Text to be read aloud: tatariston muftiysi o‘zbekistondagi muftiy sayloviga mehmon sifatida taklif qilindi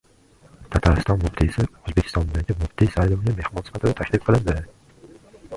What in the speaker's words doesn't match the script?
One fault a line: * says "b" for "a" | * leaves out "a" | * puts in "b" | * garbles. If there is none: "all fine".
all fine